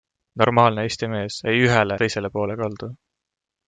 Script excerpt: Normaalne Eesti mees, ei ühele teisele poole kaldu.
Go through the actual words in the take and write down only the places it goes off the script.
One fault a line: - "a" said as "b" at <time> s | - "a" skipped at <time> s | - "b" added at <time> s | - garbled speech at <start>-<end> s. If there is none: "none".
none